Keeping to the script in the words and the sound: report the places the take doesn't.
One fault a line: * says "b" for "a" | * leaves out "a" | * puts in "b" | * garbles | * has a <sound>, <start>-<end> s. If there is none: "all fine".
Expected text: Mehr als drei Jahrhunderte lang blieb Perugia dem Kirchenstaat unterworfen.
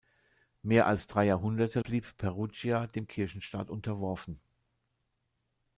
* leaves out "lang"